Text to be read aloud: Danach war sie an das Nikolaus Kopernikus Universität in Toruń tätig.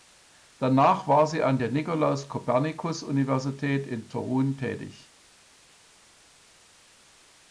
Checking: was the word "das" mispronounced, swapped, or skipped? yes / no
yes